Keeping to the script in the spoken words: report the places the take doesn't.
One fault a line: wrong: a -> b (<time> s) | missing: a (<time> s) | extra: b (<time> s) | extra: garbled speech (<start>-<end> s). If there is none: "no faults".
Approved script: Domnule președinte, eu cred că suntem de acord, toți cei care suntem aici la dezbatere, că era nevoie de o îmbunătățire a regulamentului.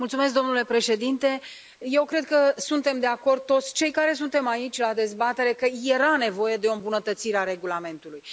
no faults